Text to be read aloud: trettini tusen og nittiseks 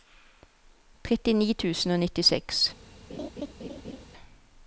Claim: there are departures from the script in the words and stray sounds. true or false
true